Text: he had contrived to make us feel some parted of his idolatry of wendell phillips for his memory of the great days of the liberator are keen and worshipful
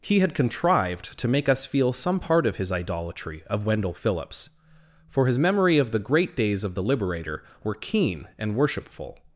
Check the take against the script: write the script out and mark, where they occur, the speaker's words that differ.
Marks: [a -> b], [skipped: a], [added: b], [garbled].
he had contrived to make us feel some [parted -> part] of his idolatry of wendell phillips for his memory of the great days of the liberator [are -> were] keen and worshipful